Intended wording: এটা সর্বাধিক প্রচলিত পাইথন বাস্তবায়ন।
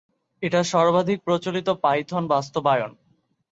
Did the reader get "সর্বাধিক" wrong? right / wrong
right